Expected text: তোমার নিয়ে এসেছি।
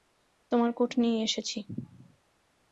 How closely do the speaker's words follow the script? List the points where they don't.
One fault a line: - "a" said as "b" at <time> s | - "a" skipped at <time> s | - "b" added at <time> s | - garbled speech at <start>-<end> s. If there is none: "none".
- "কোট" added at 0.7 s